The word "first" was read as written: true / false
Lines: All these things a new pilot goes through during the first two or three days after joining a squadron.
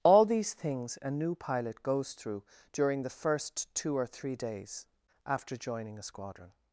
true